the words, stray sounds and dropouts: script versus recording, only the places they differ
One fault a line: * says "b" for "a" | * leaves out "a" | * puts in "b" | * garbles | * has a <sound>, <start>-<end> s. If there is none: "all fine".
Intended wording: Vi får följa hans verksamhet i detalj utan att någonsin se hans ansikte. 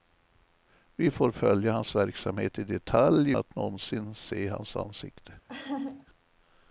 * leaves out "utan"
* has a laugh, 5.5-6.1 s